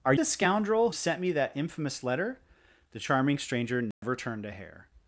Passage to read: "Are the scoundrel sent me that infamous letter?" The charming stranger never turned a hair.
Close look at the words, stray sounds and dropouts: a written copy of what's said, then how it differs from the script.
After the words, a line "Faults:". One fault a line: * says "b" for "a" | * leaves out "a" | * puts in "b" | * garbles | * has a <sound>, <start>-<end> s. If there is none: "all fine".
"Are the scoundrel sent me that infamous letter?" The charming stranger never turned a hair.
Faults:
* has a dropout, 3.9-4.0 s